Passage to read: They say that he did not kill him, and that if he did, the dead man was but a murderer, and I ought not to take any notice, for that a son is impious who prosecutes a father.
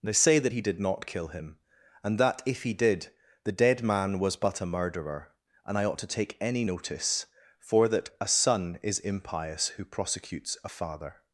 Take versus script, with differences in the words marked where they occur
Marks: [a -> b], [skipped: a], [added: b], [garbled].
They say that he did not kill him, and that if he did, the dead man was but a murderer, and I ought [skipped: not] to take any notice, for that a son is impious who prosecutes a father.